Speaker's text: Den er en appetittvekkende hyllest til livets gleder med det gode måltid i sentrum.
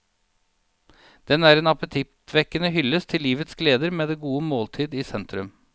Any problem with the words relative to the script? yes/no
no